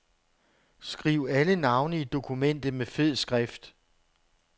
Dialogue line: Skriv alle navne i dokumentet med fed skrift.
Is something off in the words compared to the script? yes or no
no